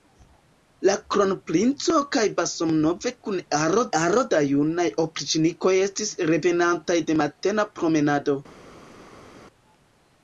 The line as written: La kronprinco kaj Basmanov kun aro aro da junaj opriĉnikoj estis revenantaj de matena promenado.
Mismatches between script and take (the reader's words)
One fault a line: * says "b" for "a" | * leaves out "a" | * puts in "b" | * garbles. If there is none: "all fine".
all fine